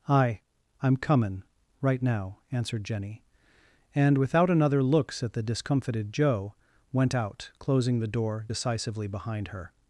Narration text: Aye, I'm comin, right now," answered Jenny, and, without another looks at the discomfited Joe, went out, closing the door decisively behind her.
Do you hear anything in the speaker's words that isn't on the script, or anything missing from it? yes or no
no